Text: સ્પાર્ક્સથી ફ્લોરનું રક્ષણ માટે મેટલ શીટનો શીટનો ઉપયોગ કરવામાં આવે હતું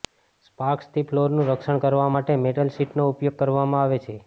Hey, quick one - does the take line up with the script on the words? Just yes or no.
no